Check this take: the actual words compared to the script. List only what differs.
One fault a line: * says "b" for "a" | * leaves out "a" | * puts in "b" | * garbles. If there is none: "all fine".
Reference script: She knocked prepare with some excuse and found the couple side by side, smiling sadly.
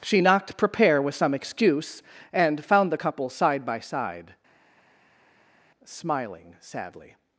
all fine